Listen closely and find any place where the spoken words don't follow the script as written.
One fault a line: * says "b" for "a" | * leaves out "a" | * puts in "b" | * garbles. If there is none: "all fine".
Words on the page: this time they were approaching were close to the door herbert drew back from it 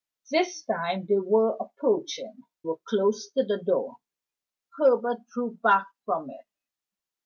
all fine